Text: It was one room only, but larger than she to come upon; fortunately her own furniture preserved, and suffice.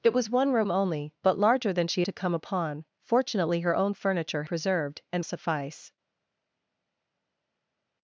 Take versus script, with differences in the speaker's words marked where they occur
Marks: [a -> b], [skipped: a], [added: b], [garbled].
It was one room only, but larger than she to come upon; fortunately her own furniture preserved, and suffice.